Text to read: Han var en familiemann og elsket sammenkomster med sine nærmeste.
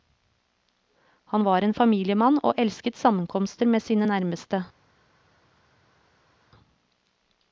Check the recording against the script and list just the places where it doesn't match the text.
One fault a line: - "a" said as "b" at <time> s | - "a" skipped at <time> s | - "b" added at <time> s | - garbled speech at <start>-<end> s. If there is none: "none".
none